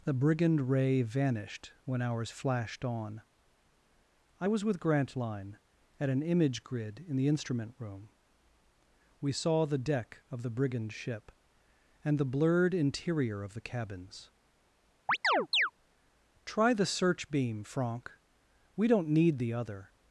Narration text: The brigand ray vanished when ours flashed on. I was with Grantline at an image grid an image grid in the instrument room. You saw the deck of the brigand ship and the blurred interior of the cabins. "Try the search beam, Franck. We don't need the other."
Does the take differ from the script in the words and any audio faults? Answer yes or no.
yes